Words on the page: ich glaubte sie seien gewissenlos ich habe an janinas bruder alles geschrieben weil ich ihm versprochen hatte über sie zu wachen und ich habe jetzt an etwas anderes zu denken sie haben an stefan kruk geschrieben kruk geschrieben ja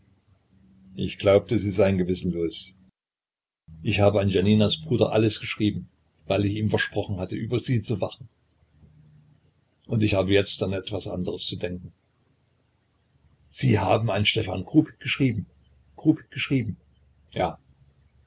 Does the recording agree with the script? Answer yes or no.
yes